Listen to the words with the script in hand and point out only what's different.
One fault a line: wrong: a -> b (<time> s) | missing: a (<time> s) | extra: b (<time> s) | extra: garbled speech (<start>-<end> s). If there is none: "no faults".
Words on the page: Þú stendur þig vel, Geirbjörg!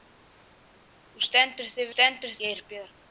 wrong: vel -> stendur (1.9 s)